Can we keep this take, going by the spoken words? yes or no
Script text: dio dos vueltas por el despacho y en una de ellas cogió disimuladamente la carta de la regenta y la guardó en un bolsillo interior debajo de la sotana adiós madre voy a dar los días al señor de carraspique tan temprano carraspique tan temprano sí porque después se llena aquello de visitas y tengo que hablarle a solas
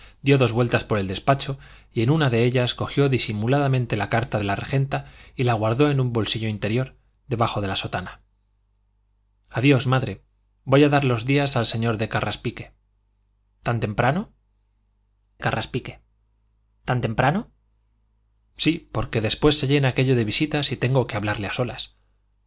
yes